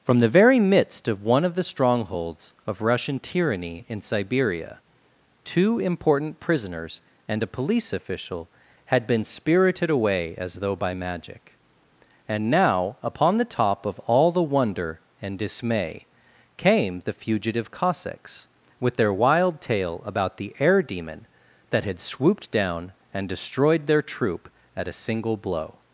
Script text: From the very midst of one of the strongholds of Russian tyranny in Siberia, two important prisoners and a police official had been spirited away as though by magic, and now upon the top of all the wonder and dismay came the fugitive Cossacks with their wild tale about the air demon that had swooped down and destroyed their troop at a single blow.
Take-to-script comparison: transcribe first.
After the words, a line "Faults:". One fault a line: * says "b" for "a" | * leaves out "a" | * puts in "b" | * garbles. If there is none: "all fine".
From the very midst of one of the strongholds of Russian tyranny in Siberia, two important prisoners and a police official had been spirited away as though by magic, and now upon the top of all the wonder and dismay came the fugitive Cossacks with their wild tale about the air demon that had swooped down and destroyed their troop at a single blow.
Faults:
all fine